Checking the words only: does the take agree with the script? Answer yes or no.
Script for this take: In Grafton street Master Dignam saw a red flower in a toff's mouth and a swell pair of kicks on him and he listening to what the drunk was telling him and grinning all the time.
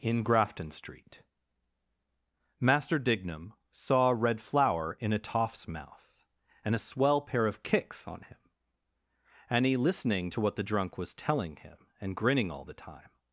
yes